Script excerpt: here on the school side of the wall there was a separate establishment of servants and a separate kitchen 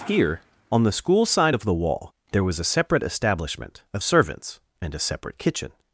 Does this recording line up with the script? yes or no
yes